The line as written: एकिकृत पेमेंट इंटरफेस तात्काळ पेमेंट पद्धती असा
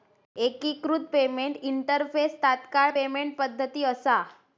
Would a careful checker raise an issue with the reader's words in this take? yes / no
no